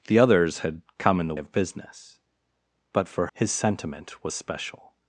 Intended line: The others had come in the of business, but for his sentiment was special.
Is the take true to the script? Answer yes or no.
yes